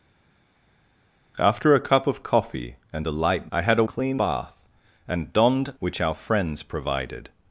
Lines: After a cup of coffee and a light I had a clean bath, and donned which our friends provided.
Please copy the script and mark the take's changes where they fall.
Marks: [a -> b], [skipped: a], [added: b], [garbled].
After a cup of coffee and a light I had a clean bath, and donned which our friends provided.